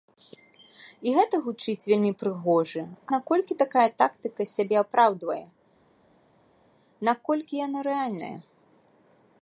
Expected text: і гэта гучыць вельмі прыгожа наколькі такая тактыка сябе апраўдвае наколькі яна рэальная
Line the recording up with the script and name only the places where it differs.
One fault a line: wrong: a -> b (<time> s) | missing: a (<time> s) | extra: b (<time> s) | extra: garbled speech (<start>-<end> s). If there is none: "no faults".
no faults